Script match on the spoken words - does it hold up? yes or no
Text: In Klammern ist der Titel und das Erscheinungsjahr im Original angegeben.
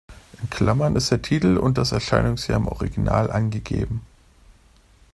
yes